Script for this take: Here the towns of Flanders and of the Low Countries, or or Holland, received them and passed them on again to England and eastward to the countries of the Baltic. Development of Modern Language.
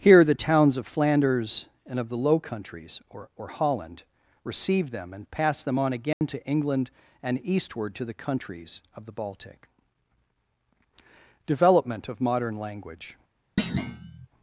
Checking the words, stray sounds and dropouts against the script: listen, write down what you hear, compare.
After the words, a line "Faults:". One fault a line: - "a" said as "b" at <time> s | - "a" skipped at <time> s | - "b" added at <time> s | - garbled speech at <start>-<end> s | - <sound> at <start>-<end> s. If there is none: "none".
Here the towns of Flanders and of the Low Countries, or or Holland, received them and passed them on again to England and eastward to the countries of the Baltic. Development of Modern Language.
Faults:
- dropout at 6.1-6.2 s
- thud at 13.6-14.3 s